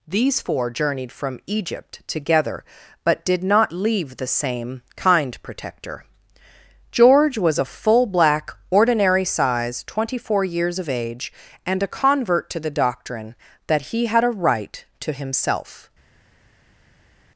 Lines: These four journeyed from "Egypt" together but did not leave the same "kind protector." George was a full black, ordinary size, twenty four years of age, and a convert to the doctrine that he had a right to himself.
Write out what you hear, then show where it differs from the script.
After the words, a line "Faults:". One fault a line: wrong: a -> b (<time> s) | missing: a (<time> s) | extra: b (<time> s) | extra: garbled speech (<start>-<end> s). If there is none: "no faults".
These four journeyed from "Egypt" together but did not leave the same "kind protector." George was a full black, ordinary size, twenty four years of age, and a convert to the doctrine that he had a right to himself.
Faults:
no faults